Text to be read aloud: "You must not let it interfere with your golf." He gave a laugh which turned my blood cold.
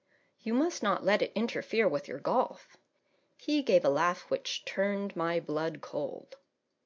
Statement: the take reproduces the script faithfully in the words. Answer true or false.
true